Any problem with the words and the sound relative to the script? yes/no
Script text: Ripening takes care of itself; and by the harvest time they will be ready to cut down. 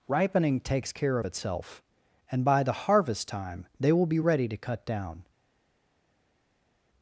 no